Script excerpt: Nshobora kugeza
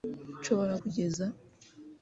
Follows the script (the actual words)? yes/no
yes